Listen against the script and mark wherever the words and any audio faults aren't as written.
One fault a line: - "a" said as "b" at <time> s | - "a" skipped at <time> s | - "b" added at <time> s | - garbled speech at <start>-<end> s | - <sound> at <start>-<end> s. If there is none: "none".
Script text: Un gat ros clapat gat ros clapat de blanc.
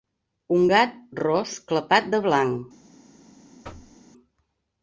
- "gat ros clapat" skipped at 2.1 s
- thud at 3.6-4.0 s